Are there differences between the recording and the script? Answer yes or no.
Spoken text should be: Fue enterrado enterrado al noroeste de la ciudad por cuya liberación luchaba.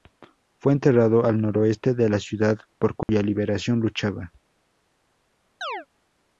yes